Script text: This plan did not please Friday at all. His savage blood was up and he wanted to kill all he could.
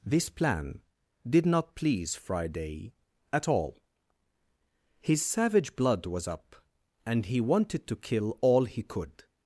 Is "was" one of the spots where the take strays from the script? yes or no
no